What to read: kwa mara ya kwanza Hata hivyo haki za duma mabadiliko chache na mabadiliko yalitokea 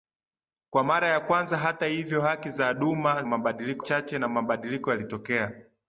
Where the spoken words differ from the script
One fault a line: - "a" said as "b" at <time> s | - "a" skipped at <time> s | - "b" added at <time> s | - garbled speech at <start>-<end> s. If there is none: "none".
none